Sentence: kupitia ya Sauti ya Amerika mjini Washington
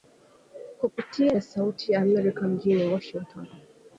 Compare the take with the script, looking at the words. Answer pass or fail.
pass